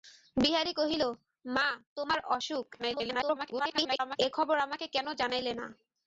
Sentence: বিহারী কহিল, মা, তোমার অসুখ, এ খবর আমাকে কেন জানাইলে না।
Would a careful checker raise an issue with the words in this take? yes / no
yes